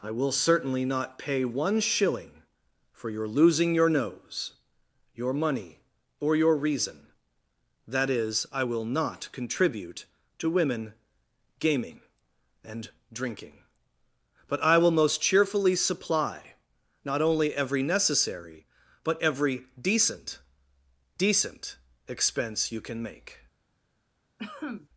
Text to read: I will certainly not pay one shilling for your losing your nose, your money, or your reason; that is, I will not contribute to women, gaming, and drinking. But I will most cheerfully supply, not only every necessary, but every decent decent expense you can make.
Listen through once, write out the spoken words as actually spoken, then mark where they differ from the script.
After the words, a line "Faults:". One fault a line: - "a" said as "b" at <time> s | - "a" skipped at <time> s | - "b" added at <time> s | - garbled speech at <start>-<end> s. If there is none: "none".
I will certainly not pay one shilling for your losing your nose, your money, or your reason; that is, I will not contribute to women, gaming, and drinking. But I will most cheerfully supply, not only every necessary, but every decent decent expense you can make.
Faults:
none